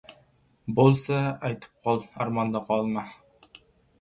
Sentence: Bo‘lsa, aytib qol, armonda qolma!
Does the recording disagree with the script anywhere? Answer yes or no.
no